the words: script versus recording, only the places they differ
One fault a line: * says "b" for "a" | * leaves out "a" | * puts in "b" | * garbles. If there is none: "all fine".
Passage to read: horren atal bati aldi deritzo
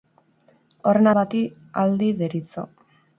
* leaves out "atal"